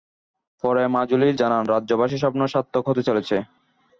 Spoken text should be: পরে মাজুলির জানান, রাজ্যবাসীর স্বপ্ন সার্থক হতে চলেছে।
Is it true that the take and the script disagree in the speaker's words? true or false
false